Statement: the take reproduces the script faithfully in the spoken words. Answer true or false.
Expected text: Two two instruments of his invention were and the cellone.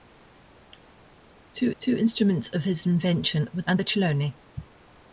true